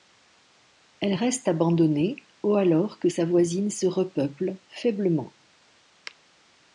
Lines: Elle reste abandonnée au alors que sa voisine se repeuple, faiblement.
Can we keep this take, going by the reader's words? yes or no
yes